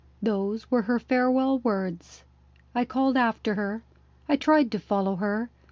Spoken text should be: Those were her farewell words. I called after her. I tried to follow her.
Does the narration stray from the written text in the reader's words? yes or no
no